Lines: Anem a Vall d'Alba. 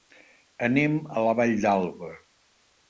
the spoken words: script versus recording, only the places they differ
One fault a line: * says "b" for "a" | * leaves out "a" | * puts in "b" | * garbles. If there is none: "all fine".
* puts in "la"